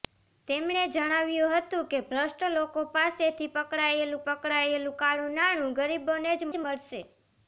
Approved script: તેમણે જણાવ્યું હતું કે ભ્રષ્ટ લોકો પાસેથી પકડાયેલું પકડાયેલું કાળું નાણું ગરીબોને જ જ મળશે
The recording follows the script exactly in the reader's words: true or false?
true